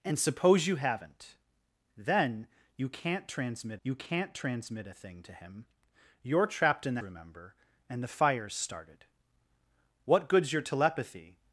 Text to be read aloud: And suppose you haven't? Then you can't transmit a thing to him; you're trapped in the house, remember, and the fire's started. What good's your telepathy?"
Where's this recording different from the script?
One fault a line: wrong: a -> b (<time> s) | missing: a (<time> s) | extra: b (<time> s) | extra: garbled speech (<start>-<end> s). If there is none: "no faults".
extra: you can't transmit (3.8 s)
missing: house (7.0 s)